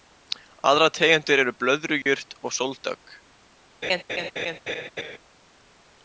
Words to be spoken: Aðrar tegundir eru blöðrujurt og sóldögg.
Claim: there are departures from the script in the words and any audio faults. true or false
true